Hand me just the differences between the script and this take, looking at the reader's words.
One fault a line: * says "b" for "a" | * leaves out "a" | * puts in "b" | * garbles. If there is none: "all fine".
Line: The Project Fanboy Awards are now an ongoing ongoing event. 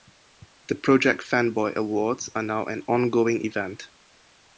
* leaves out "ongoing"